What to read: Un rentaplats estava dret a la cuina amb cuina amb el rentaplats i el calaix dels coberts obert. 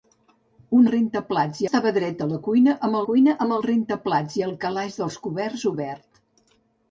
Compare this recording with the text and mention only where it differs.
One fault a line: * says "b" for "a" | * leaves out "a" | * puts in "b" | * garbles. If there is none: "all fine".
all fine